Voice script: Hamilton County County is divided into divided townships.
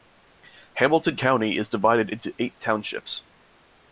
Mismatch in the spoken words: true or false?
true